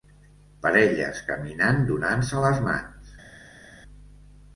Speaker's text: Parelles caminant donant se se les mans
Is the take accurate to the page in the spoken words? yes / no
no